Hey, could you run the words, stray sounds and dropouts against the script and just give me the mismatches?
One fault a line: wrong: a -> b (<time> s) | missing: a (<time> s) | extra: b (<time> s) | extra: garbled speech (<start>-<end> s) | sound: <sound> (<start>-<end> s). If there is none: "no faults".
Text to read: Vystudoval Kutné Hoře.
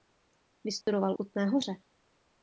sound: dropout (0.8-0.9 s)